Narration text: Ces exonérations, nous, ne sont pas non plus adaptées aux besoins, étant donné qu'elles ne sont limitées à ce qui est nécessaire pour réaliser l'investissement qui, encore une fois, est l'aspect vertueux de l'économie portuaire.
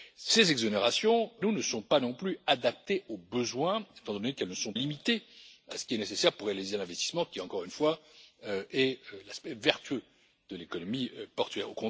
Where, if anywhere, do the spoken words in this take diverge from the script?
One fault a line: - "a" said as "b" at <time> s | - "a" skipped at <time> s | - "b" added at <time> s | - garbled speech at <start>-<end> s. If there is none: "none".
none